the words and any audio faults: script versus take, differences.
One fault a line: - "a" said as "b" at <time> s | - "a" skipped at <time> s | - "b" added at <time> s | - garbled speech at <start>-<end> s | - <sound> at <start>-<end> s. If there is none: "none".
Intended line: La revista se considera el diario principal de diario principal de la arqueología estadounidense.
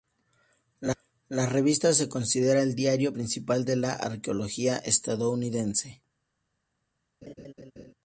- "diario principal de" skipped at 3.7 s
- laugh at 7.2-7.9 s